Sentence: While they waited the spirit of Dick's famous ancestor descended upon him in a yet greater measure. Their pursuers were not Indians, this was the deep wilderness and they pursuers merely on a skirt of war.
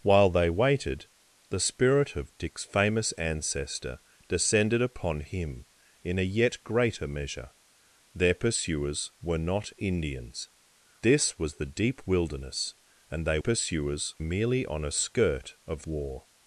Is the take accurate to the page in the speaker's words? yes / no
yes